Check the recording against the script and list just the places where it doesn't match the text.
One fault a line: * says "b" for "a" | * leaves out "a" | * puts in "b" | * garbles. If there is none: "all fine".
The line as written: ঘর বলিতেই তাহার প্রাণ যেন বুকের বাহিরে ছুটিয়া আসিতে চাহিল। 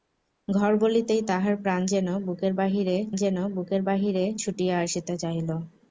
* puts in "যেন বুকের বাহিরে"